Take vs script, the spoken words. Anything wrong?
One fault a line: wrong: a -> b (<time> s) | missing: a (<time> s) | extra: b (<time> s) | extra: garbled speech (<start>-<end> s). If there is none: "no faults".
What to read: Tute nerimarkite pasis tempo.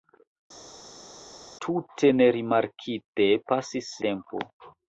no faults